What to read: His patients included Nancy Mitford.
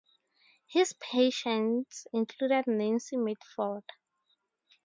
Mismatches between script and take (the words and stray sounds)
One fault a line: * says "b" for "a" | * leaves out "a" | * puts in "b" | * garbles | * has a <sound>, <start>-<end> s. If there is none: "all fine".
all fine